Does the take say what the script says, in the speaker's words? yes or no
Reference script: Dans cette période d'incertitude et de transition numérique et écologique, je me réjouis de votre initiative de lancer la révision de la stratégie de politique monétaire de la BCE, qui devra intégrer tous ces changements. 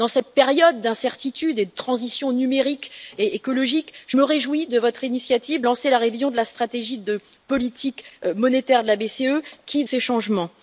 no